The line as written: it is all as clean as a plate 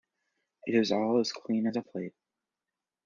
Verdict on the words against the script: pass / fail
pass